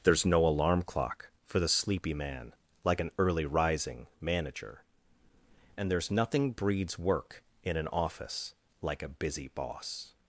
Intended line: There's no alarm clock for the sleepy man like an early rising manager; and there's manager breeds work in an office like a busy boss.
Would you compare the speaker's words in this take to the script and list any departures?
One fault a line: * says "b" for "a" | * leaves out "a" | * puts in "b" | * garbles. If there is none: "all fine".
* says "nothing" for "manager"